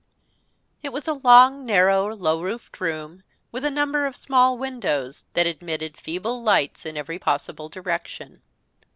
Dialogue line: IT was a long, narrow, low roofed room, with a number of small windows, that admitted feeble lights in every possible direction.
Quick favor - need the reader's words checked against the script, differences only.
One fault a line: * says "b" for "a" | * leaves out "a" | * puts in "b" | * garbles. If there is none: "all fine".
all fine